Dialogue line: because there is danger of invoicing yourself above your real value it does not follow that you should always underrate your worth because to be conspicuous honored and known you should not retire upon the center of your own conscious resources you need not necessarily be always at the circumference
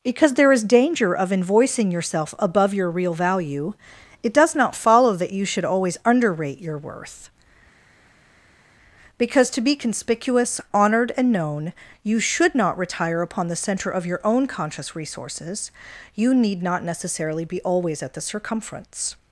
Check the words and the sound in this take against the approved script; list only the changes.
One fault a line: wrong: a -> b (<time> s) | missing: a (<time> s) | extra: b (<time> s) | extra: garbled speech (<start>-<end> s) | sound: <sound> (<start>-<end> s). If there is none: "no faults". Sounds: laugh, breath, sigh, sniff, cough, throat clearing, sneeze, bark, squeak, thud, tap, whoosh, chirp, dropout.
no faults